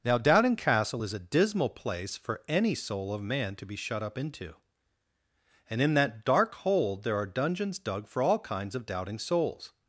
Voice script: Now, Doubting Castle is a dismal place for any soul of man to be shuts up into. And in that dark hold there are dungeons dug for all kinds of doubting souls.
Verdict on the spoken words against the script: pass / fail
fail